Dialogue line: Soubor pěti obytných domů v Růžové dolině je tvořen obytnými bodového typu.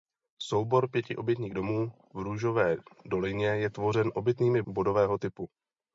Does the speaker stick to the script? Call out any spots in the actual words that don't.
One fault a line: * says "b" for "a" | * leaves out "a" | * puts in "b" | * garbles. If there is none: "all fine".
all fine